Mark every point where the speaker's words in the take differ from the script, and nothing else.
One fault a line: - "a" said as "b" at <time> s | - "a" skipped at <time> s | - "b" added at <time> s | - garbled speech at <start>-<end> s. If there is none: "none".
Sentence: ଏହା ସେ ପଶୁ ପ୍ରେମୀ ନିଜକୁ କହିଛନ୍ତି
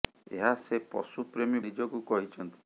none